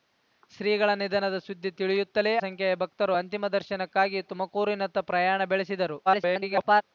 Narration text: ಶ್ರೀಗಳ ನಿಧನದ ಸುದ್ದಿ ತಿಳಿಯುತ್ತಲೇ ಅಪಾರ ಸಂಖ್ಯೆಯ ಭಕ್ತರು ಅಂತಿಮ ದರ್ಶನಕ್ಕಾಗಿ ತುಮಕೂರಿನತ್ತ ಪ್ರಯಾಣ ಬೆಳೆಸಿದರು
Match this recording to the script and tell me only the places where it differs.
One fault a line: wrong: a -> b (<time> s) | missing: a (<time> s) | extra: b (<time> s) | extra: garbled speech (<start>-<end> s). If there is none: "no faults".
missing: ಅಪಾರ (2.3 s)
extra: garbled speech (6.1-6.8 s)